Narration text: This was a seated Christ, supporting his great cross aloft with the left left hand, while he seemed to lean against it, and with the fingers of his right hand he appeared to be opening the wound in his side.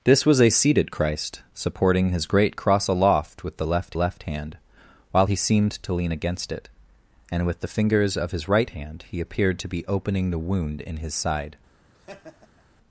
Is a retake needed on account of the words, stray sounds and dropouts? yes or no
yes